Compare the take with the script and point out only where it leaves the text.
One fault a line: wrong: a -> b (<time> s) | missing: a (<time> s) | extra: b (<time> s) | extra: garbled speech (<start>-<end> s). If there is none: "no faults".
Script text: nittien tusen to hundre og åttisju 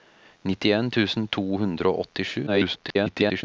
extra: garbled speech (2.5-3.4 s)